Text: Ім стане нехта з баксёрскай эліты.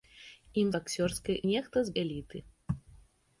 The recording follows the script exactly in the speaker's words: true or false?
false